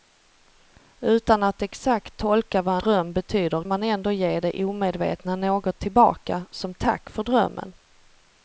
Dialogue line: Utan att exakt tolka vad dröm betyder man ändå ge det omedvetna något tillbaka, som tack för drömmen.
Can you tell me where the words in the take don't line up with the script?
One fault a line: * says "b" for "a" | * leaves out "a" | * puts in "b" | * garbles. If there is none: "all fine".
all fine